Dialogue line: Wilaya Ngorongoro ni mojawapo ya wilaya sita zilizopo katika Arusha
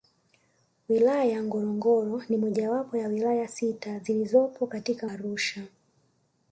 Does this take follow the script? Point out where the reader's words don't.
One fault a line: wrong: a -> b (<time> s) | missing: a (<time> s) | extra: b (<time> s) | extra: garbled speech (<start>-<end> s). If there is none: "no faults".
no faults